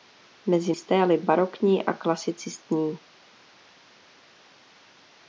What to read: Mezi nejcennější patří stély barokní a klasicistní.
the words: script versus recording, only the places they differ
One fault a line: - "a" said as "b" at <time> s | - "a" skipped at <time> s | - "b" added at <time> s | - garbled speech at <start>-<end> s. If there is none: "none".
- "nejcennější patří" skipped at 0.7 s